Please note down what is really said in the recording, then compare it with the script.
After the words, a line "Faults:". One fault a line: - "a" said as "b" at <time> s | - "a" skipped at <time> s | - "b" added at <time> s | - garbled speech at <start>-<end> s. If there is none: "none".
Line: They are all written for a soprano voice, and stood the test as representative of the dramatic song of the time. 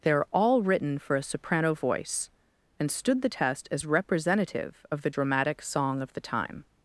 They are all written for a soprano voice, and stood the test as representative of the dramatic song of the time.
Faults:
none